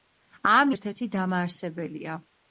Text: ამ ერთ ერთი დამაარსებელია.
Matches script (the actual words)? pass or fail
pass